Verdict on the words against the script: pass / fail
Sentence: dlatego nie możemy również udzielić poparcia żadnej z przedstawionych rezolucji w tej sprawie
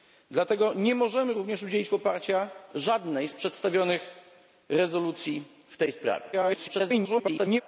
fail